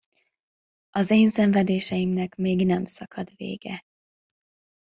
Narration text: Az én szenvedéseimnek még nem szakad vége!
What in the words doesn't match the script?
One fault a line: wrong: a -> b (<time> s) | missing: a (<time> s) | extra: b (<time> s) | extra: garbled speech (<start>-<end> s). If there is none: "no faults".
no faults